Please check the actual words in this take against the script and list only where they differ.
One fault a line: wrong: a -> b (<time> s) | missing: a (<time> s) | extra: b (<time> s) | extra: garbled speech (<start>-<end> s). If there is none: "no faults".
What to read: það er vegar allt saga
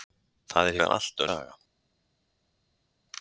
no faults